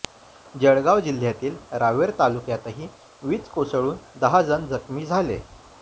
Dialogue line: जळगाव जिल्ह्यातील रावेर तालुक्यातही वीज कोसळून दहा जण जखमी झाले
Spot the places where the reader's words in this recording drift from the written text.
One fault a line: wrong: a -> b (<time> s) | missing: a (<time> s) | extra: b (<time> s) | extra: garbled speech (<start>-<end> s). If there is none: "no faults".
no faults